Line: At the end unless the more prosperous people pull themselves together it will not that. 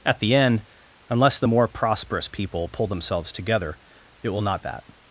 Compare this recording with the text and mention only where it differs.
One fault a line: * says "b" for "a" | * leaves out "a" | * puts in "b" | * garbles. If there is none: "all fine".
all fine